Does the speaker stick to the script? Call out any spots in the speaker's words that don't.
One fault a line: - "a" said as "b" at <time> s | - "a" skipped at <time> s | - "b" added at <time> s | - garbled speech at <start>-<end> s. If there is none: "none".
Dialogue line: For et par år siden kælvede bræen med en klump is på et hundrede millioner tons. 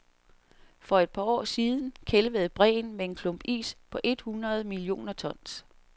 none